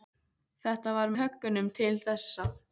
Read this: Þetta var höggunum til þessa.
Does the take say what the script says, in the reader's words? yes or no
yes